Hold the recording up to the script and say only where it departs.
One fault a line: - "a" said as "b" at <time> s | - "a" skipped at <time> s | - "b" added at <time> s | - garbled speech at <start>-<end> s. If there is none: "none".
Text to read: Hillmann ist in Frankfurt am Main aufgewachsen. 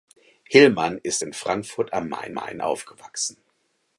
- "Main" added at 2.3 s